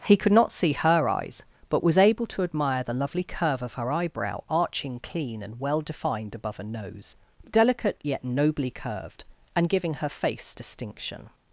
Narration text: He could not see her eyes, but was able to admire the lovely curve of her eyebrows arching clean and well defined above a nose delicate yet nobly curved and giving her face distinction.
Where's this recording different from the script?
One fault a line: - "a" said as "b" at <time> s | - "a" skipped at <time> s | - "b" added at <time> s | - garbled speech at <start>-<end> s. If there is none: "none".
- "eyebrows" said as "eyebrow" at 3.9 s